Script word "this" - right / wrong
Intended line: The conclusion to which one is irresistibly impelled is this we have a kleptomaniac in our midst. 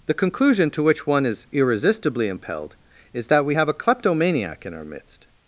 wrong